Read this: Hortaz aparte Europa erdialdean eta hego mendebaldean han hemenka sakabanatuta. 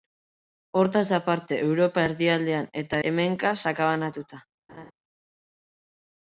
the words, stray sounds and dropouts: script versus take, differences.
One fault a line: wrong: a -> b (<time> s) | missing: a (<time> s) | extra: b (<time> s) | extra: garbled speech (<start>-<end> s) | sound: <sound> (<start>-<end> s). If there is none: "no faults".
missing: hego mendebaldean han (3.0 s)
sound: laugh (4.7-4.9 s)